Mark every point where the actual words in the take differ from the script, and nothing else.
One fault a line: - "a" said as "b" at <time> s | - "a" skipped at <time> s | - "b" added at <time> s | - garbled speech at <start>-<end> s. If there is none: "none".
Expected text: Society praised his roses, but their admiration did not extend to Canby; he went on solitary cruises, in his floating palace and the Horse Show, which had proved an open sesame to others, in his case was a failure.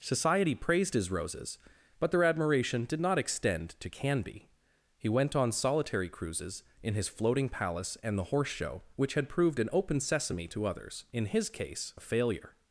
- "was" skipped at 11.9 s